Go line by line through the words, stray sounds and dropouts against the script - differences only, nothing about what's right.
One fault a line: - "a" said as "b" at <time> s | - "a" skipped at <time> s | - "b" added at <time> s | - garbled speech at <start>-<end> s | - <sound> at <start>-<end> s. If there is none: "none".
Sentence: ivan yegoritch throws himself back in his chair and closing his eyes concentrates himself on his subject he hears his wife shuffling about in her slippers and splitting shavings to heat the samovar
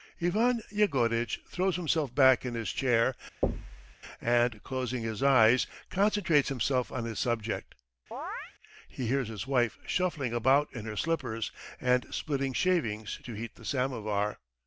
- thud at 3.4-4.0 s
- chirp at 8.1-8.5 s